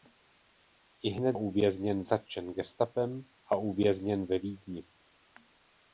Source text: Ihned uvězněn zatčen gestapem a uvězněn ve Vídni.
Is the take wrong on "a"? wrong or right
right